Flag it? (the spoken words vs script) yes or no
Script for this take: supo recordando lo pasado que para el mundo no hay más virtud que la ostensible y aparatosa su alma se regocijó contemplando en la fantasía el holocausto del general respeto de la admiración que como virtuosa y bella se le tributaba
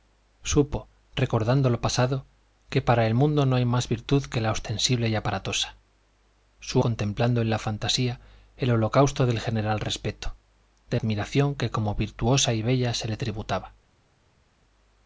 yes